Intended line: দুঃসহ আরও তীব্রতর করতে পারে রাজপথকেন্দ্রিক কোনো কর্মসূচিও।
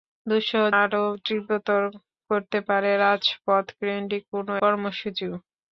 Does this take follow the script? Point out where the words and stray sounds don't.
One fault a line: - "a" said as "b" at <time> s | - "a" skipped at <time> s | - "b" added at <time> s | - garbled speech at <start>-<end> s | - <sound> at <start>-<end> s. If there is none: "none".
none